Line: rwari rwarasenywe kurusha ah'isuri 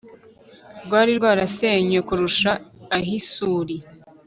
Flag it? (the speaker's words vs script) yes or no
no